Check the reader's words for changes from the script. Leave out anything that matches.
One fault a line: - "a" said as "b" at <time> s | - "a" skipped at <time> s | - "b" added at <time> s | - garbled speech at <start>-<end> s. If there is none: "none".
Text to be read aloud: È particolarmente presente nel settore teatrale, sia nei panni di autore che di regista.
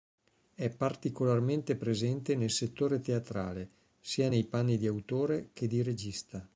none